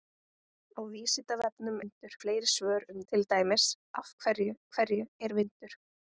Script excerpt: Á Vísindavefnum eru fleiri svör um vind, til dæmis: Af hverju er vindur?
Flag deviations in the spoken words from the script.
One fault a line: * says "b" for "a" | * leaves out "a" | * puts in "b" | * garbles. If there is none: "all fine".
* says "vindur" for "eru"
* leaves out "vind"
* puts in "hverju"